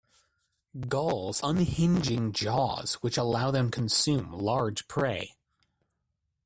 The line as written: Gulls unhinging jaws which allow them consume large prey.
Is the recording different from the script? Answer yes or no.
no